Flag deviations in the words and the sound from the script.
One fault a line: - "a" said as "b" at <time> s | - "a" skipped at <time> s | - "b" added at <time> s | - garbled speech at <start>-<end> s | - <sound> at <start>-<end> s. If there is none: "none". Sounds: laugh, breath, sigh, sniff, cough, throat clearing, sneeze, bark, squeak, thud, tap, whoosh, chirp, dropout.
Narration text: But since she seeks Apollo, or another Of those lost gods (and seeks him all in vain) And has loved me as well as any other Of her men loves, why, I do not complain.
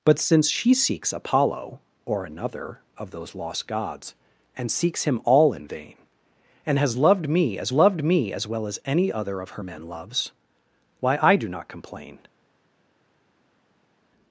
- "loved me as" added at 7.7 s